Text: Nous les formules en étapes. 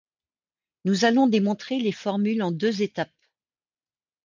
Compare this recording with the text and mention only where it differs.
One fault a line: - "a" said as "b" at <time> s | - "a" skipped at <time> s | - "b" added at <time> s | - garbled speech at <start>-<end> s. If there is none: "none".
- "allons démontrer" added at 1.1 s
- "deux" added at 2.5 s